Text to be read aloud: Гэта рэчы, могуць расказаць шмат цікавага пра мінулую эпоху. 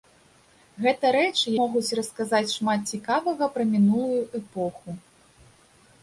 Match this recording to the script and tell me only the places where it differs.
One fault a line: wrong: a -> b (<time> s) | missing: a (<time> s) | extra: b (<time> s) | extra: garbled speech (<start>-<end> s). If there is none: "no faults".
no faults